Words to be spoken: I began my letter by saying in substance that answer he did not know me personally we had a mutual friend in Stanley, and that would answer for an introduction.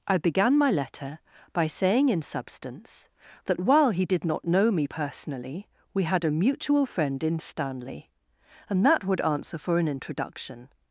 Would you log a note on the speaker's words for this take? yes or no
yes